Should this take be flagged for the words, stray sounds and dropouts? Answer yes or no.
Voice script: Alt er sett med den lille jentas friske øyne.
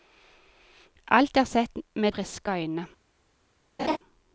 yes